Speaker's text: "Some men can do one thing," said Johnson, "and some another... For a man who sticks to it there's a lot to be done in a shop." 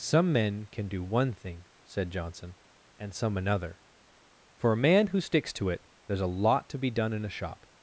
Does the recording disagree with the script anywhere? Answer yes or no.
no